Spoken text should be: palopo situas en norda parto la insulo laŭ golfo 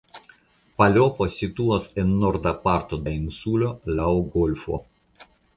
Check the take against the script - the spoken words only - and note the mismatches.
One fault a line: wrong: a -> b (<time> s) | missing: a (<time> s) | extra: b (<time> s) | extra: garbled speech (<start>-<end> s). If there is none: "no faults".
no faults